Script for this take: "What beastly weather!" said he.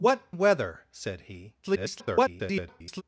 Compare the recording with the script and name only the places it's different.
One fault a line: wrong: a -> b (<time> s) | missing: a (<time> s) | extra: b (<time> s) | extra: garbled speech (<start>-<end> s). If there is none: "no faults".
missing: beastly (0.3 s)
extra: garbled speech (1.6-3.0 s)